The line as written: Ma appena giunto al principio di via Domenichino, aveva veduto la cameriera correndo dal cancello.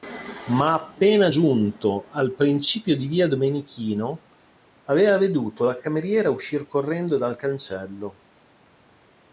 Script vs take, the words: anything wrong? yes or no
yes